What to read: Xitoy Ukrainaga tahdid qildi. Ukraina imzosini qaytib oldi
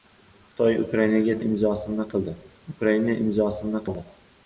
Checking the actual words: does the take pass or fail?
fail